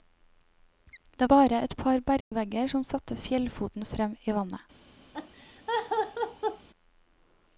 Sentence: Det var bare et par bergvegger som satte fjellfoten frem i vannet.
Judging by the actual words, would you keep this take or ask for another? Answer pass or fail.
fail